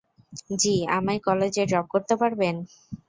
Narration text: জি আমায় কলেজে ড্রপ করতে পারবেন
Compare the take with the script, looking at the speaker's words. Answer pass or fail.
pass